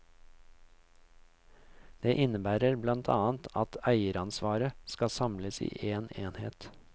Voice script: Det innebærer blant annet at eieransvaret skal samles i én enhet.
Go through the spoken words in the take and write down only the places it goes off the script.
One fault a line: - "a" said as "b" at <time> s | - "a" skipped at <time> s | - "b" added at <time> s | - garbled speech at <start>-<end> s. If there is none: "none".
none